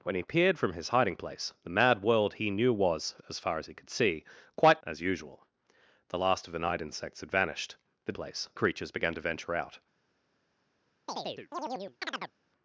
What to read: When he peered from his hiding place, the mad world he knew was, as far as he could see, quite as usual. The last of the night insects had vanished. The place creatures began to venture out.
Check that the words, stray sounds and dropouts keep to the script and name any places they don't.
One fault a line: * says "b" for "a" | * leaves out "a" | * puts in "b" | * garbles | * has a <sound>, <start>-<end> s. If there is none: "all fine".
* has a chirp, 11.1-12.3 s